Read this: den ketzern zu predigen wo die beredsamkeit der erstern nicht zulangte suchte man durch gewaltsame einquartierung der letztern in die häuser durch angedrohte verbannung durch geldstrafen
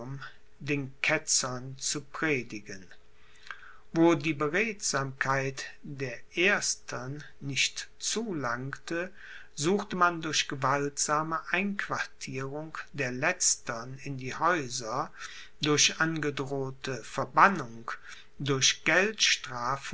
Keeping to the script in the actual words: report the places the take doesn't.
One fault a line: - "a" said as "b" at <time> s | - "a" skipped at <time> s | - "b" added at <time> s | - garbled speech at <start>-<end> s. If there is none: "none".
none